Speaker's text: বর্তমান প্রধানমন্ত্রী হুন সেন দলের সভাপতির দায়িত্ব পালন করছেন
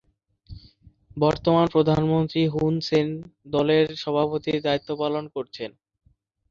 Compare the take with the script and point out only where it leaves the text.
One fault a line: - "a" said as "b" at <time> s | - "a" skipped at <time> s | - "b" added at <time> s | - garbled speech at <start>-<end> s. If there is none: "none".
none